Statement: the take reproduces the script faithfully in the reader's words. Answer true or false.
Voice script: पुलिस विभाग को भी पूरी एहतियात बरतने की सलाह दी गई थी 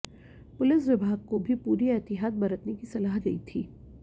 false